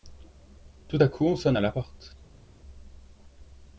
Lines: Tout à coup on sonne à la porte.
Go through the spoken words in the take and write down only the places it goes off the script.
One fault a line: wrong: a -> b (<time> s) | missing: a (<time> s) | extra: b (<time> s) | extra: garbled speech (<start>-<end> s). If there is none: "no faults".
no faults